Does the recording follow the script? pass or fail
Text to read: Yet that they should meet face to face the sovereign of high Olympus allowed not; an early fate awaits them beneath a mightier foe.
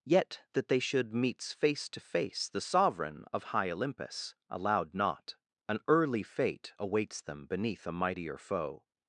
fail